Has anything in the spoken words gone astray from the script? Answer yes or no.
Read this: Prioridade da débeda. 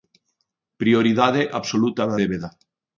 yes